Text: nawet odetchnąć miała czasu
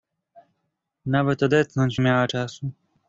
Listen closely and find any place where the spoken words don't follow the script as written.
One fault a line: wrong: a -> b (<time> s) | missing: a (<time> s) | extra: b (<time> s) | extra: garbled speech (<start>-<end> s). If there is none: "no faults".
no faults